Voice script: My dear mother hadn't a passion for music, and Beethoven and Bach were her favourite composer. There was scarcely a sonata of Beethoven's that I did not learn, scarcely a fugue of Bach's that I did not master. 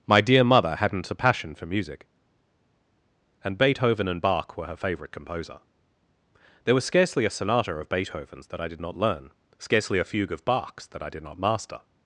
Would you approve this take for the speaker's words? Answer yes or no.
yes